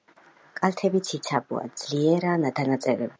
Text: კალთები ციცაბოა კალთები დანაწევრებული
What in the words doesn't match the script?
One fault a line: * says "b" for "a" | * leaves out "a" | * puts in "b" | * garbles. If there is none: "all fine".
* says "ძლიერაა" for "კალთები"